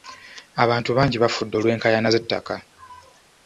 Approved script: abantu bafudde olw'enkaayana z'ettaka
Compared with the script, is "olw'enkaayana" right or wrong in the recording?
right